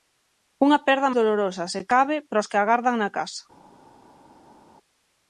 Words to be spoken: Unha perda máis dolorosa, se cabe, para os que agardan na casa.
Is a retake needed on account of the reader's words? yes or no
yes